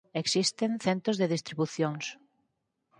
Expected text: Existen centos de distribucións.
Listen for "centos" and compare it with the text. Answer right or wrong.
right